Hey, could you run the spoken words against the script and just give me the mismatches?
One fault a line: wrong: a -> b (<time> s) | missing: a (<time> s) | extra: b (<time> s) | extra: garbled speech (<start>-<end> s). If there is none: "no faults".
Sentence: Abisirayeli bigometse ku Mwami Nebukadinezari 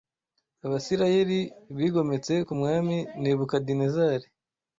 no faults